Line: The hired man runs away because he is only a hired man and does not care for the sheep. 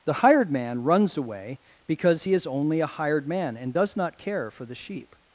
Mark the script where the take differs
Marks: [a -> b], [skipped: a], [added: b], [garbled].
The hired man runs away because he is only a hired man and does not care for the sheep.